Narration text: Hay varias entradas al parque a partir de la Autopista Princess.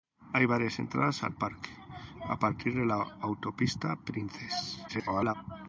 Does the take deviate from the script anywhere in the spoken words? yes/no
yes